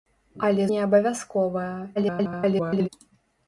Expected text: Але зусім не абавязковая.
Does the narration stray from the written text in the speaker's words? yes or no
yes